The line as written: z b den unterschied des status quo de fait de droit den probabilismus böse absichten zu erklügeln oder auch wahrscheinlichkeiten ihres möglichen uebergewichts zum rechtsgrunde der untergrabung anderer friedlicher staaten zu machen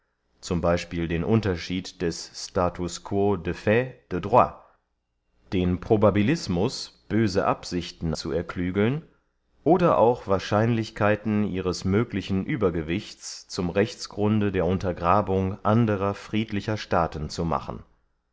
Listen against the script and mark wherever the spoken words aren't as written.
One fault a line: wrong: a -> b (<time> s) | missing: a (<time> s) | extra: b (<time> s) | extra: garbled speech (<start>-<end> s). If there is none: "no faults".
no faults